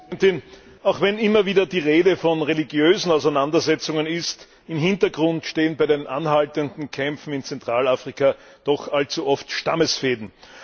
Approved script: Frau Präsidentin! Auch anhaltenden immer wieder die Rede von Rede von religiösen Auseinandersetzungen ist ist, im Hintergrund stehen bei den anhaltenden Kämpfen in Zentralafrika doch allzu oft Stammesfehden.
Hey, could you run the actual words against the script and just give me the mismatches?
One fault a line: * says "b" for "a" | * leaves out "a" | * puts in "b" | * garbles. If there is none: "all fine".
* says "wenn" for "anhaltenden"
* leaves out "Rede von"
* leaves out "ist"